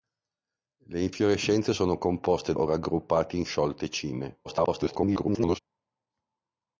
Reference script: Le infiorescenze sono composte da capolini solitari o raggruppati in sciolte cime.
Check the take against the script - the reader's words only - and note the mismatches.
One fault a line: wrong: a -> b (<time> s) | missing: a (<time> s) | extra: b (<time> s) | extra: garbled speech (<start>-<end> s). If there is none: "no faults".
missing: da capolini solitari (2.5 s)
extra: garbled speech (4.4-5.6 s)